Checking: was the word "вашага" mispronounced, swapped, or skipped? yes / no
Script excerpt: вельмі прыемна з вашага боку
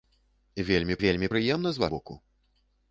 yes